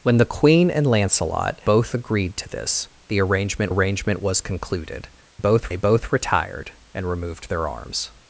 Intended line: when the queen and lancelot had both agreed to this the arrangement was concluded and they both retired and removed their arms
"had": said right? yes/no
no